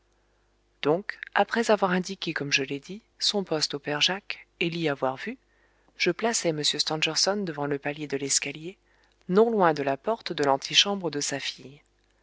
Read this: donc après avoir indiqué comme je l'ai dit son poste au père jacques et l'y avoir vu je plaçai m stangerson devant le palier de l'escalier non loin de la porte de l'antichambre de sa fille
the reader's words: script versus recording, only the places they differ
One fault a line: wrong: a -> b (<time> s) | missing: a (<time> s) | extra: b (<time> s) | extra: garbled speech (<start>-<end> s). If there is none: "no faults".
no faults